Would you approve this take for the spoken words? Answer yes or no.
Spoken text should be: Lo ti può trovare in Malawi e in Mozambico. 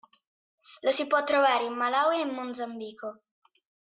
no